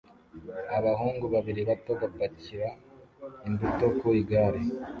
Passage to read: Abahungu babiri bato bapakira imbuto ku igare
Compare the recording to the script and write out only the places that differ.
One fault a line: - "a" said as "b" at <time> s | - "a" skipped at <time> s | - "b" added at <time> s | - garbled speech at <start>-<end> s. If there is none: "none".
none